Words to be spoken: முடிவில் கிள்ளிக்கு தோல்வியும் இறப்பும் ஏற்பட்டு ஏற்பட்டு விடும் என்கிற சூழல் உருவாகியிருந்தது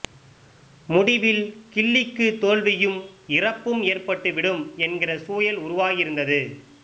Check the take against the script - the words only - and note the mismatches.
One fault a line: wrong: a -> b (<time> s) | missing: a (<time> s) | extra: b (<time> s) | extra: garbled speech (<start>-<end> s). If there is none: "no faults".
missing: ஏற்பட்டு (4.3 s)